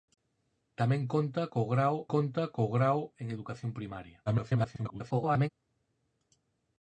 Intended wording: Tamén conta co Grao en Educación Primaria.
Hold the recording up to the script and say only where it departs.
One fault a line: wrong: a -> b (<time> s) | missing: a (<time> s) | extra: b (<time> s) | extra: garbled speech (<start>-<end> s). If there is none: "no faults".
extra: conta co Grao (2.1 s)
extra: garbled speech (4.3-5.5 s)